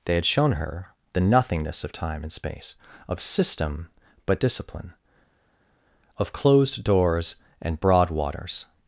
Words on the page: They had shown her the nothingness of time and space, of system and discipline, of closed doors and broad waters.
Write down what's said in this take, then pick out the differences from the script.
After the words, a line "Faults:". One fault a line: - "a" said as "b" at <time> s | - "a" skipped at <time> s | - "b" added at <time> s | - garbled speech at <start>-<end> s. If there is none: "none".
They had shown her the nothingness of time and space, of system but discipline, of closed doors and broad waters.
Faults:
- "and" said as "but" at 4.2 s